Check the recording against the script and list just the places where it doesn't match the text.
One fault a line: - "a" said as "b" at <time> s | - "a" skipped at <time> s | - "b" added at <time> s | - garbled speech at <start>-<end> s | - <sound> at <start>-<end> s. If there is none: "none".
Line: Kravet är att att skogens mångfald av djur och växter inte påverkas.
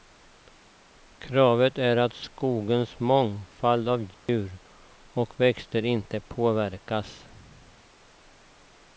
- "att" skipped at 2.1 s
- dropout at 4.1-4.3 s